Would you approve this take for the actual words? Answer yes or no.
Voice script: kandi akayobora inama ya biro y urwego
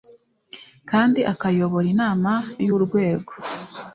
no